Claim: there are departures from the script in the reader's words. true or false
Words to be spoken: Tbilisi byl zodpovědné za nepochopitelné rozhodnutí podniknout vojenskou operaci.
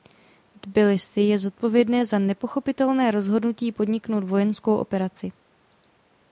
true